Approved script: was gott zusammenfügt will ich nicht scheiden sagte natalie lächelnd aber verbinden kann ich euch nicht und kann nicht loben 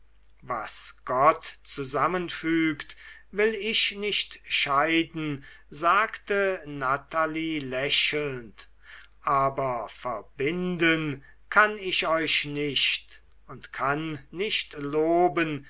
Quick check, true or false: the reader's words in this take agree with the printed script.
true